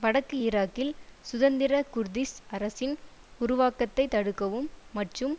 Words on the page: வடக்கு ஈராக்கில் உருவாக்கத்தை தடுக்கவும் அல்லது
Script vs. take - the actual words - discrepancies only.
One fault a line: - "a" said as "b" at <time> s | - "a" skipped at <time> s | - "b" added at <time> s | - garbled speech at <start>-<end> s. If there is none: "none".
- "சுதந்திர குர்திஷ் அரசின்" added at 1.2 s
- "அல்லது" said as "மற்றும்" at 4.9 s